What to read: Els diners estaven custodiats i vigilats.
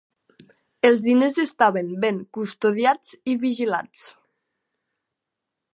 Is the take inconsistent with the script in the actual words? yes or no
yes